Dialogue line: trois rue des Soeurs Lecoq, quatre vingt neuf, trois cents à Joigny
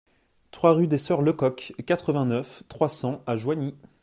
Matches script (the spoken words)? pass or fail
pass